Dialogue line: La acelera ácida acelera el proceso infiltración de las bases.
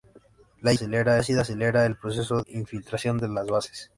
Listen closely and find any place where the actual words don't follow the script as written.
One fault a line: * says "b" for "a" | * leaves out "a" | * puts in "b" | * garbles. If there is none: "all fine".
all fine